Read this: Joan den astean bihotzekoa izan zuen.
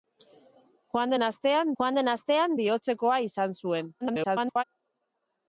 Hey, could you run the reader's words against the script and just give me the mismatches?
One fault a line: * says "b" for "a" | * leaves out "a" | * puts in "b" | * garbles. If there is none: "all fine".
* puts in "joan den astean"
* garbles